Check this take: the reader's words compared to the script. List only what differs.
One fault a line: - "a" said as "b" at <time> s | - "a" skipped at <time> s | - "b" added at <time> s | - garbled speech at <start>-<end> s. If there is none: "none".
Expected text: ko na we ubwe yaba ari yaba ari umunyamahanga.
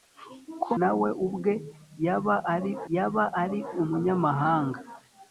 none